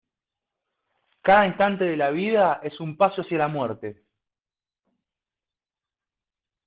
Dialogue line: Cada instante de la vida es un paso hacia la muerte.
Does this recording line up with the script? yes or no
yes